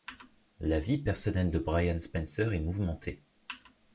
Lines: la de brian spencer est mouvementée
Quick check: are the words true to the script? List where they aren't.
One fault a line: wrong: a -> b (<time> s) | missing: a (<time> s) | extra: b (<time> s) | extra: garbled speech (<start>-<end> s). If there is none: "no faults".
extra: vie personnelle (0.8 s)